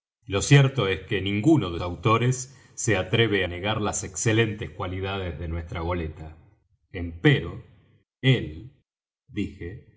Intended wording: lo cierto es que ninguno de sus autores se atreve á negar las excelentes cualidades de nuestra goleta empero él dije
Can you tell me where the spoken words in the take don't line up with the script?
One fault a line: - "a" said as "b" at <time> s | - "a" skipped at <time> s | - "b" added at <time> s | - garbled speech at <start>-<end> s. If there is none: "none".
- "sus" skipped at 1.8 s
- "á" skipped at 3.5 s